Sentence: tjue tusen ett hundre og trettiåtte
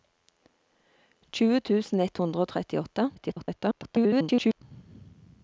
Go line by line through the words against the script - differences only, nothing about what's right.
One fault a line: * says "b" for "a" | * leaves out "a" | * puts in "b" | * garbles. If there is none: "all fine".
* garbles